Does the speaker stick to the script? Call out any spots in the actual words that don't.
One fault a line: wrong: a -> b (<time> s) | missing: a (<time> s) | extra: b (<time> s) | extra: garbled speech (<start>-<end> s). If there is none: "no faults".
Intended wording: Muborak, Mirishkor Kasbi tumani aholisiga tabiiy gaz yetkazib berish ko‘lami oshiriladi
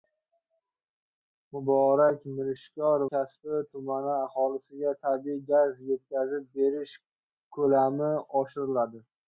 no faults